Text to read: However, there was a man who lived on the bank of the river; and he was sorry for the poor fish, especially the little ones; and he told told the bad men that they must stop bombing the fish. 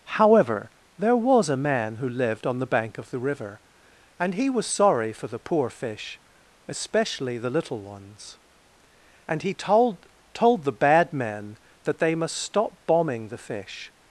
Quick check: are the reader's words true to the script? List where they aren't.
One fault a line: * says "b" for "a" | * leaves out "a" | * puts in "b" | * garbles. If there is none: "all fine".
all fine